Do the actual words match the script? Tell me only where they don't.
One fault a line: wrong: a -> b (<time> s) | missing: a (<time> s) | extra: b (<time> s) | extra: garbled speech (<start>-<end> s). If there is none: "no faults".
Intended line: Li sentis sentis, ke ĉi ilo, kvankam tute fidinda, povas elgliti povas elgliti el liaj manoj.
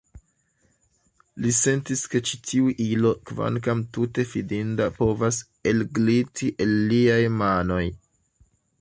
missing: sentis (2.0 s)
extra: tiu (2.5 s)
missing: povas elgliti (6.5 s)